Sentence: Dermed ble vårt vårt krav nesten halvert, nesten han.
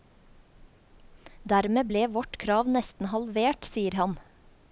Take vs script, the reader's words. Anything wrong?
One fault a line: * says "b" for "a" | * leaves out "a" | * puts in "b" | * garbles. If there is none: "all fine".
* leaves out "vårt"
* says "sier" for "nesten"